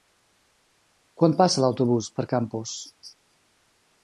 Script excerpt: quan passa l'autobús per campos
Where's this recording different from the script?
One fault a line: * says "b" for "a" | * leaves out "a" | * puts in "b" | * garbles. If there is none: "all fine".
all fine